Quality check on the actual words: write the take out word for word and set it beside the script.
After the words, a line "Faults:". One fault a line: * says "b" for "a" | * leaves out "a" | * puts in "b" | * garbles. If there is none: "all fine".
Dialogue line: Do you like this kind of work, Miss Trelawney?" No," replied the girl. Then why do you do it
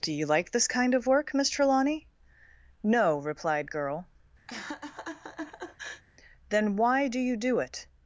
Do you like this kind of work, Miss Trelawney?" No," replied girl. Then why do you do it
Faults:
* leaves out "the"